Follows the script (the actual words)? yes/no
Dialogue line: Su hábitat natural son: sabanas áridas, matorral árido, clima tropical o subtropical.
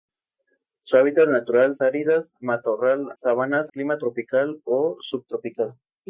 no